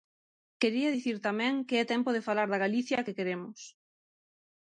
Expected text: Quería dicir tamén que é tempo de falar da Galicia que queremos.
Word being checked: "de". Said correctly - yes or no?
yes